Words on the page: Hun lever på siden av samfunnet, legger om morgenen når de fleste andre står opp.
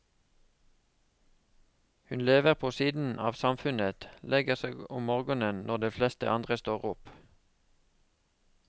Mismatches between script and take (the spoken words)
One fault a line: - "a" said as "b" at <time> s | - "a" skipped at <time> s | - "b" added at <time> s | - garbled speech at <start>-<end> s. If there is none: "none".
- "seg" added at 4.6 s